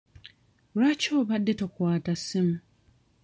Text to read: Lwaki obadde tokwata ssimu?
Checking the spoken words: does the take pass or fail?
pass